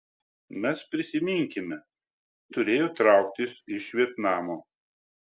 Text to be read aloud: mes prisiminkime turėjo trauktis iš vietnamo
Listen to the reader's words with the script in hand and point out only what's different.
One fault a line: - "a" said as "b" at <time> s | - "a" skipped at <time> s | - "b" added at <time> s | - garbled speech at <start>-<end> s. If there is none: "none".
none